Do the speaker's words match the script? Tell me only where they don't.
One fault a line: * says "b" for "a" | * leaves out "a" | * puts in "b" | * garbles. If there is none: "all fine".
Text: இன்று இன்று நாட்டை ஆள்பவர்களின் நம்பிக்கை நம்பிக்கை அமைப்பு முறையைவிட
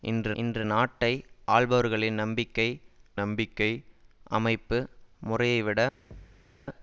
all fine